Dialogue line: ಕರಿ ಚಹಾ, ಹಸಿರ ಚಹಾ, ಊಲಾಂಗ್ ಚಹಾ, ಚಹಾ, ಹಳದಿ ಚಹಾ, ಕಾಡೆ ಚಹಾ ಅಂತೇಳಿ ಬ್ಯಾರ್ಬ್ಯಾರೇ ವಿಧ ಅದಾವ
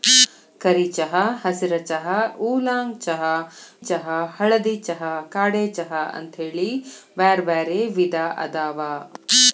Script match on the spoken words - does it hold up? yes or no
yes